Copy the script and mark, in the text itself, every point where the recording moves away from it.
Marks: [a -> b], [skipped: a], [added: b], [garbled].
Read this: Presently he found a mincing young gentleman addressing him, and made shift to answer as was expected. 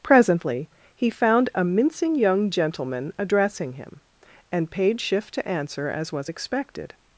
Presently he found a mincing young gentleman addressing him, and [made -> paid] shift to answer as was expected.